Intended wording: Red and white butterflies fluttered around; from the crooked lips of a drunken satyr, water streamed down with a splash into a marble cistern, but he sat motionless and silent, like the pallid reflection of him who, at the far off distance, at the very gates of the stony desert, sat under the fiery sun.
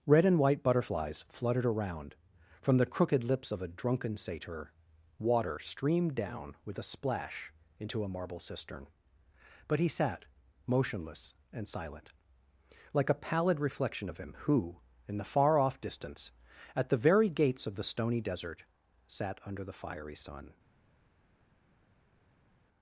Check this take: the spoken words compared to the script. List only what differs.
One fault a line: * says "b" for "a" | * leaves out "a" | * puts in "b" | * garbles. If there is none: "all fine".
* says "a" for "the"
* says "in" for "at"